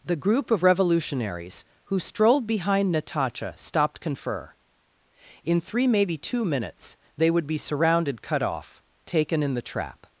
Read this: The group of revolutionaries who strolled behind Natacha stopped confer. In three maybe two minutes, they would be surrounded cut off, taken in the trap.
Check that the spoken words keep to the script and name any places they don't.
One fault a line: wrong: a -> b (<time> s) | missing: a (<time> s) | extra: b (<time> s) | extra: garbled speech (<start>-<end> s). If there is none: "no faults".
no faults